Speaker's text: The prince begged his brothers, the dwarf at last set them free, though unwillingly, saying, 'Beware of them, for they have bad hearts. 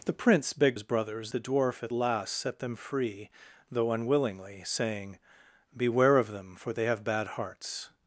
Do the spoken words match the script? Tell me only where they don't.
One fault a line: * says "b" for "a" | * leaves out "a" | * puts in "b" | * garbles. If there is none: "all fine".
all fine